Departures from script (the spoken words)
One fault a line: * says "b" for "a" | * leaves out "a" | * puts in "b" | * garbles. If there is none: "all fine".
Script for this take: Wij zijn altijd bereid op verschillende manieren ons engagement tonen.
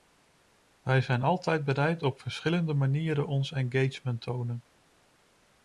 all fine